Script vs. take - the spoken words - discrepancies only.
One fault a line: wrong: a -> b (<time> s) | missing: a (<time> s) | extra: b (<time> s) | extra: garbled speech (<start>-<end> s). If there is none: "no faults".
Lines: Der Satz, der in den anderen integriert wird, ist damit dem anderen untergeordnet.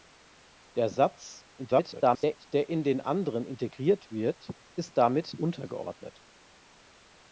extra: garbled speech (1.6-2.5 s)
missing: dem anderen (5.4 s)